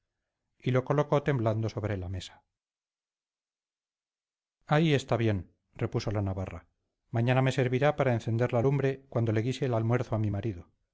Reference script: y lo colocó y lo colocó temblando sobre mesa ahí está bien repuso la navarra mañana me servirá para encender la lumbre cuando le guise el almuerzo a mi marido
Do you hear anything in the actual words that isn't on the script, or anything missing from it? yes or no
yes